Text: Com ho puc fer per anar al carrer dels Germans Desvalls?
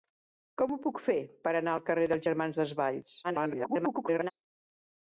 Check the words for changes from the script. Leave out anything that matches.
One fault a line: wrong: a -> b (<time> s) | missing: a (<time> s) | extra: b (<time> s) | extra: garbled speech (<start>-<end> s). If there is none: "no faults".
extra: garbled speech (3.2-4.3 s)